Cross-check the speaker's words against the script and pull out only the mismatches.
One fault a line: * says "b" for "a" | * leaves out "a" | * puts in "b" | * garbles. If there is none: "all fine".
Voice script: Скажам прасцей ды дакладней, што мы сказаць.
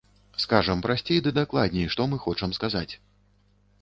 * puts in "хочам"